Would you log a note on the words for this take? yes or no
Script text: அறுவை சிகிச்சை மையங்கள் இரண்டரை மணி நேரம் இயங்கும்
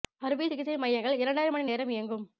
no